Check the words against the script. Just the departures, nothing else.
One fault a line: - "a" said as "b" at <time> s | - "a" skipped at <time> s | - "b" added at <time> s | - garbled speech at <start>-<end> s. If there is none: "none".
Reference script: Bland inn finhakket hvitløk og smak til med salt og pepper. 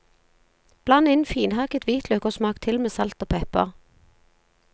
none